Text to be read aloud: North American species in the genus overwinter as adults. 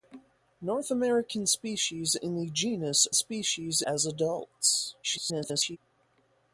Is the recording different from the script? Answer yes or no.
yes